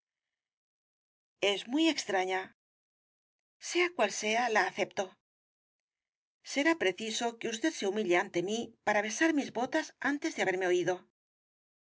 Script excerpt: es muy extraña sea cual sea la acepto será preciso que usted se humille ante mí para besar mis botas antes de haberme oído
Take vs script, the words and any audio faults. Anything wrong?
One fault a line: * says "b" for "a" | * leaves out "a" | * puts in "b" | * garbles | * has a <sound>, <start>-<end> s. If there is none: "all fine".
all fine